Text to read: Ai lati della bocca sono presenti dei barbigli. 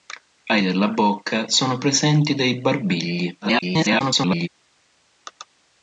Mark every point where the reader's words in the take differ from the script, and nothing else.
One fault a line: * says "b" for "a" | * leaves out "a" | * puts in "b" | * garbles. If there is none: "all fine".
* leaves out "lati"
* garbles